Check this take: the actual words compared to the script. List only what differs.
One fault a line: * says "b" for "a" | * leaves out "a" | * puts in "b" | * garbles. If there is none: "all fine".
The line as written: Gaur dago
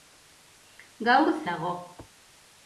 all fine